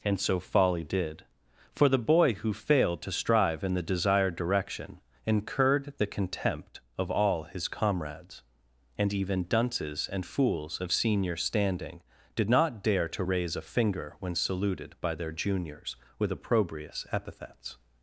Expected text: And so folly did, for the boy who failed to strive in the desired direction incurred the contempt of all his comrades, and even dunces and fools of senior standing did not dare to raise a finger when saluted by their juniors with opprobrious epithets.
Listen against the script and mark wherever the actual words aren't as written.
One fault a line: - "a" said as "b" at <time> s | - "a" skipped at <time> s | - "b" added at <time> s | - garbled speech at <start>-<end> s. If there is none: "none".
none